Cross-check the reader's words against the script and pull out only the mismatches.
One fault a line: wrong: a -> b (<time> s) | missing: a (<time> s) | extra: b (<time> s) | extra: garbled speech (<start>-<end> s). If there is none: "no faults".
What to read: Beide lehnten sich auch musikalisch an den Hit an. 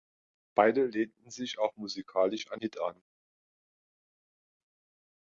missing: den (2.6 s)